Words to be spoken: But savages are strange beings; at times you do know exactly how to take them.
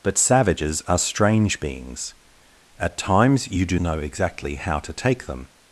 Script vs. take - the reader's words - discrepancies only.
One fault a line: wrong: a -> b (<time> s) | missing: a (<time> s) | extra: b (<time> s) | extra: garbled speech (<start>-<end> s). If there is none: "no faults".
no faults